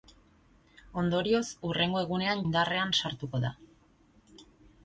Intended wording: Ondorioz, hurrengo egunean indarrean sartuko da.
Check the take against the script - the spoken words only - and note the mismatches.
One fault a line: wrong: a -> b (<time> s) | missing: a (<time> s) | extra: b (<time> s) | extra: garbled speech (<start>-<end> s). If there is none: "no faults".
no faults